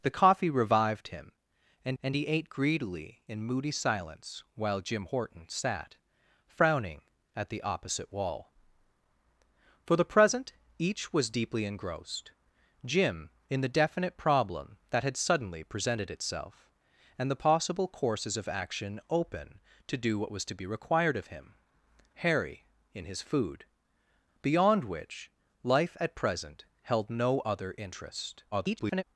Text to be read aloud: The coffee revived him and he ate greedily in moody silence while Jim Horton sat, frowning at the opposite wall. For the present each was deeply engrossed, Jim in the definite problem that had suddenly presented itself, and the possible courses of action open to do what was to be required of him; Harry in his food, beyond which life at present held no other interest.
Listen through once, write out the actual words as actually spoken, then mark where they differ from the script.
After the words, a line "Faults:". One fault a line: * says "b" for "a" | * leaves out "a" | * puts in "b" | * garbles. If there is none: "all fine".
The coffee revived him and and he ate greedily in moody silence while Jim Horton sat, frowning at the opposite wall. For the present each was deeply engrossed, Jim in the definite problem that had suddenly presented itself, and the possible courses of action open to do what was to be required of him; Harry in his food, beyond which life at present held no other interest. [garbled]
Faults:
* puts in "and"
* garbles